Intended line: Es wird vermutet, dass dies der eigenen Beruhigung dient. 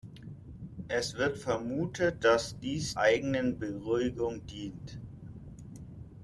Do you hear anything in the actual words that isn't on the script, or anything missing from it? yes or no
yes